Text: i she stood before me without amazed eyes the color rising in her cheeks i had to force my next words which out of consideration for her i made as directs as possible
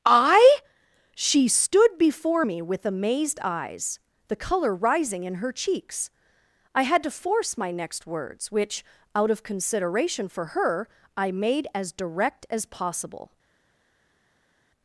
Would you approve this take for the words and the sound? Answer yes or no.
no